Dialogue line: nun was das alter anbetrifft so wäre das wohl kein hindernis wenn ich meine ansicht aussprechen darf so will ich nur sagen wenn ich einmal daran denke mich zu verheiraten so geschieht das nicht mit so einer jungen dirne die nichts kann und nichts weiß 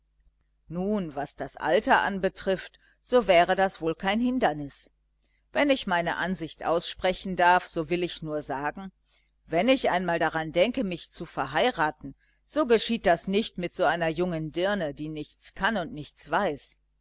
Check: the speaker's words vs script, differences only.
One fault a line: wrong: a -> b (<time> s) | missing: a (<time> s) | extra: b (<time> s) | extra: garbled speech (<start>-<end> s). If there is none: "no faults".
no faults